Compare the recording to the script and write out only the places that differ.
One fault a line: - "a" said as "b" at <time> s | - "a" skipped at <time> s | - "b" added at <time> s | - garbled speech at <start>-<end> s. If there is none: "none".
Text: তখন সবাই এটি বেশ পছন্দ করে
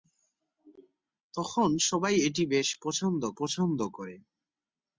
- "পছন্দ" added at 3.4 s